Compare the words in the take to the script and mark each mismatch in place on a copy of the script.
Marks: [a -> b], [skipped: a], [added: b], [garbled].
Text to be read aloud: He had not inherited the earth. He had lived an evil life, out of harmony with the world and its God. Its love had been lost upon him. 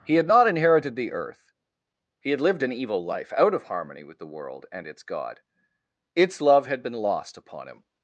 He had not inherited the earth. He had lived an evil life, out of harmony with the world and its God. Its love had been lost upon him.